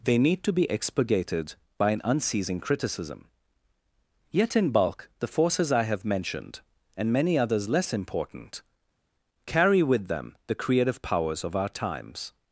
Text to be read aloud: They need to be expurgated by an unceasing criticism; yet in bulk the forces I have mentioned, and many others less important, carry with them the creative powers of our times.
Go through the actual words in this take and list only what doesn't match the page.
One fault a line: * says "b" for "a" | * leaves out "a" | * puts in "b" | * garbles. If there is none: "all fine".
all fine